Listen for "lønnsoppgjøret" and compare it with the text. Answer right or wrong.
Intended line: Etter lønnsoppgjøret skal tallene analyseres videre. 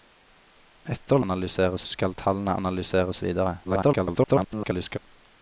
wrong